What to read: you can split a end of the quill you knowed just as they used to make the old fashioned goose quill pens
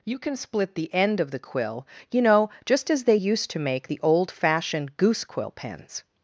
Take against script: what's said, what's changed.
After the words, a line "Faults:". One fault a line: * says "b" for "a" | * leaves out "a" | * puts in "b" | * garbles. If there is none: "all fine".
you can split the end of the quill you know just as they used to make the old fashioned goose quill pens
Faults:
* says "the" for "a"
* says "know" for "knowed"